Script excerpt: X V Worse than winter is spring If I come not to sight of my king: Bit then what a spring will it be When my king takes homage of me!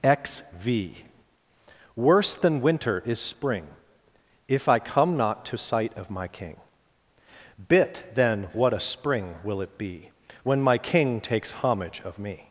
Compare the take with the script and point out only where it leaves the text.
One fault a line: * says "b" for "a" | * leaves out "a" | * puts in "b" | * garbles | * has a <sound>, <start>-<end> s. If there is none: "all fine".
all fine